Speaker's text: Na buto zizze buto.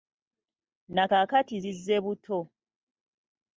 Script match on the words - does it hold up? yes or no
no